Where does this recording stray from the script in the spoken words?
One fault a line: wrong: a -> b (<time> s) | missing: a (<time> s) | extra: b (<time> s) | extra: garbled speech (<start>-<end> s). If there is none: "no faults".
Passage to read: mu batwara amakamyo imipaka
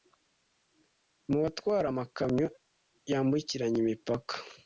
extra: yambukiranya (3.1 s)